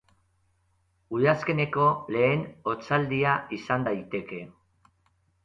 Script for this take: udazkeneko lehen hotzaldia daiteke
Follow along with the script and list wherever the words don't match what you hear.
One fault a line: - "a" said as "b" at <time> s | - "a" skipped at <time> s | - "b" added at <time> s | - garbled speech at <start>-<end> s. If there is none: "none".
- "izan" added at 3.6 s